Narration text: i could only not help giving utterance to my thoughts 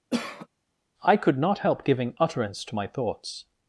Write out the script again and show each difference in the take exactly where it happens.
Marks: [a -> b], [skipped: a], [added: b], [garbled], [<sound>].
[cough] i could [skipped: only] not help giving utterance to my thoughts